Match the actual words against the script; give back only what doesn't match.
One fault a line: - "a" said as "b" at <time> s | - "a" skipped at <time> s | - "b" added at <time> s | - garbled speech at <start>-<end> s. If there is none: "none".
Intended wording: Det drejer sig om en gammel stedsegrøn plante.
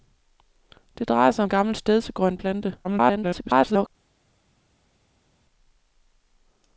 - "om" skipped at 1.4 s
- garbled speech at 2.8-3.9 s